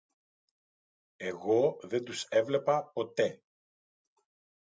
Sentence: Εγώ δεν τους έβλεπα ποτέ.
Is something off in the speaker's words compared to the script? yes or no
no